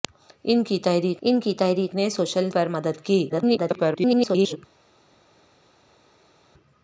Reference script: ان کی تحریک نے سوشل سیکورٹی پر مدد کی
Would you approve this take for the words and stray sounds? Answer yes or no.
no